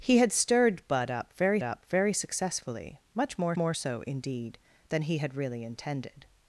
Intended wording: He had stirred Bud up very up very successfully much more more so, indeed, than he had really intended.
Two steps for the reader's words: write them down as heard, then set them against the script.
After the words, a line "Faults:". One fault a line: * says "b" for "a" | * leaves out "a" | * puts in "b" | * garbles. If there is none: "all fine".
He had stirred Bud up very up very successfully much more more so, indeed, than he had really intended.
Faults:
all fine